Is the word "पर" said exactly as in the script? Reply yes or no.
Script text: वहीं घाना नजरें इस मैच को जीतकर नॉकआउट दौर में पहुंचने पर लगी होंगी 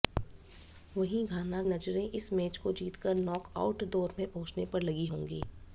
yes